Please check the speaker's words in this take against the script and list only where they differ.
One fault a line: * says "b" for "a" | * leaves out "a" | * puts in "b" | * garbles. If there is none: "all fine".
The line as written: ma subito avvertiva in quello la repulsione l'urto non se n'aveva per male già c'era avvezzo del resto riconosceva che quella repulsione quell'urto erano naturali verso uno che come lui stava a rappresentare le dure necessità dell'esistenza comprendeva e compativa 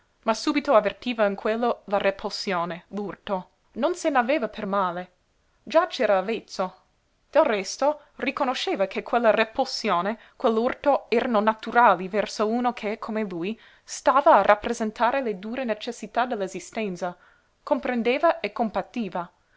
all fine